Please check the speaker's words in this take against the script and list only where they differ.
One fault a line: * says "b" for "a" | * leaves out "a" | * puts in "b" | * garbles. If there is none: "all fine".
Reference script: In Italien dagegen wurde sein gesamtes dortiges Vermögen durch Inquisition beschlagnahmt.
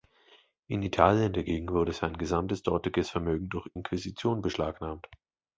all fine